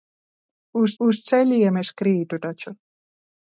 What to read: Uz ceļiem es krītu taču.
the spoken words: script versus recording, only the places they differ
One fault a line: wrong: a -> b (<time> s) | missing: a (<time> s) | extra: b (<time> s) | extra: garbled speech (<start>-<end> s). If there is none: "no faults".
extra: uz (1.0 s)